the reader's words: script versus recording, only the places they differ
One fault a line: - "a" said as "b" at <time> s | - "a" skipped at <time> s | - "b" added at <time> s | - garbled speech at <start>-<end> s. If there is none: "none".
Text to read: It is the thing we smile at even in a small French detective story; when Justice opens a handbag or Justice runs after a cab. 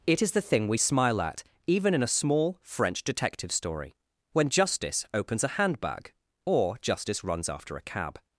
none